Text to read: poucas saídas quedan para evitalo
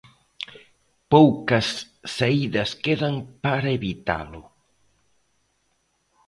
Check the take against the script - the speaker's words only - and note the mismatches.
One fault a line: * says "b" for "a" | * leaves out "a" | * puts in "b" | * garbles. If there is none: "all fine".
all fine